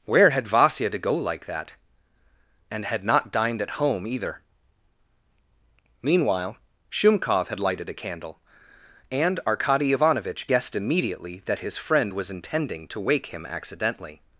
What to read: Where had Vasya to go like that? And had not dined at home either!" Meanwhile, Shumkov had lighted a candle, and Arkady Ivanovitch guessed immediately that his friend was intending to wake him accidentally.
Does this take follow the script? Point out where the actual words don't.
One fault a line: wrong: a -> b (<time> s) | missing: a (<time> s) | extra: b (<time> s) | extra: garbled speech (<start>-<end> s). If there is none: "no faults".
no faults